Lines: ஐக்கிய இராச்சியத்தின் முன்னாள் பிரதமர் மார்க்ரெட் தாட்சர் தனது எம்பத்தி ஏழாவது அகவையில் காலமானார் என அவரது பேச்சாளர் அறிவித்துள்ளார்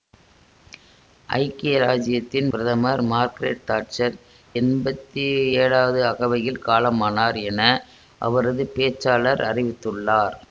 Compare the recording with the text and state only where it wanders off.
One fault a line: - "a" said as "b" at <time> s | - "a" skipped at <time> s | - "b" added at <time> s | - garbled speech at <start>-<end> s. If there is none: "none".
- "முன்னாள்" skipped at 2.5 s
- "தனது" skipped at 4.2 s